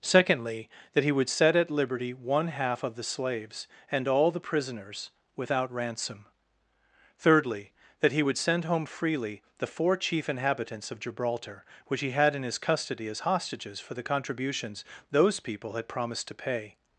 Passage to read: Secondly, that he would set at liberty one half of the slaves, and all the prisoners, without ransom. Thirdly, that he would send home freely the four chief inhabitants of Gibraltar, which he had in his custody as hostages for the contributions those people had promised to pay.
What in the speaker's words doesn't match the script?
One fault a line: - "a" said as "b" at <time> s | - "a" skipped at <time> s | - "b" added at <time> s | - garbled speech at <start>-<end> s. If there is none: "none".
none